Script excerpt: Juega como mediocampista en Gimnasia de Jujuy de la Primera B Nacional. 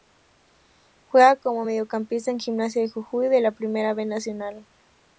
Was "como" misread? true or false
false